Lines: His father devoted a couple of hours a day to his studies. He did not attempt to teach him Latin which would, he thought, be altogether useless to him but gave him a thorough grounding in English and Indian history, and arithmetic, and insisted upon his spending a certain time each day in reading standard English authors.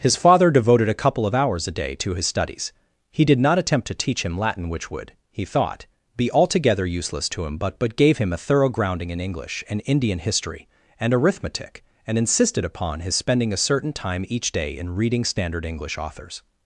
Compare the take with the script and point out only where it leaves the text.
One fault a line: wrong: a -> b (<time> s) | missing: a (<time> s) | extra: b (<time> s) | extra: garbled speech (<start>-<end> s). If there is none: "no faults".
extra: but (7.8 s)